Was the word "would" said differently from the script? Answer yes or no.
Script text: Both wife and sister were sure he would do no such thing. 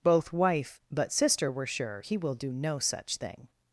yes